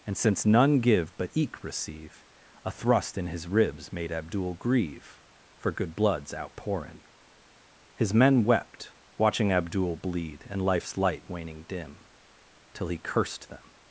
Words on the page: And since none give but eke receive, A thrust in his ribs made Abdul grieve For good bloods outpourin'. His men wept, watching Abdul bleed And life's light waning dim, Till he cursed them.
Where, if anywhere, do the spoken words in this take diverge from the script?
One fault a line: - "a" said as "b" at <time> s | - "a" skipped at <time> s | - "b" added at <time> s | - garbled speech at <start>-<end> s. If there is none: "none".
none